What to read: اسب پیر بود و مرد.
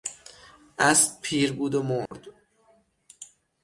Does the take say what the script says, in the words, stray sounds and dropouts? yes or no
no